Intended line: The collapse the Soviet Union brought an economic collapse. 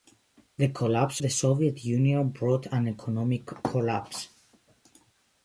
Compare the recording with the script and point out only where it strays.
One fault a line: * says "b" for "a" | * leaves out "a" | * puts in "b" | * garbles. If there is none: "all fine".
all fine